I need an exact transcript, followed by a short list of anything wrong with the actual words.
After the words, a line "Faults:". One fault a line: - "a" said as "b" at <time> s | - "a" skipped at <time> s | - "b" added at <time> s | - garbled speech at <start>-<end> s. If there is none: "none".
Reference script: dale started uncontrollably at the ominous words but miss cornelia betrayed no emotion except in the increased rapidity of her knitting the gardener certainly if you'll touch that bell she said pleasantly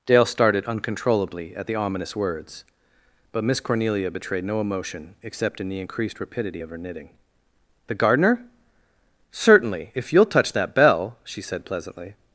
dale started uncontrollably at the ominous words but miss cornelia betrayed no emotion except in the increased rapidity of her knitting the gardener certainly if you'll touch that bell she said pleasantly
Faults:
none